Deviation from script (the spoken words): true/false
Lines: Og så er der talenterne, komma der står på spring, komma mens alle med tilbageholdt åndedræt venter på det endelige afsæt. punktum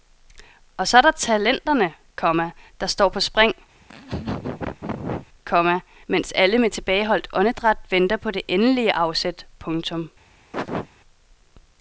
false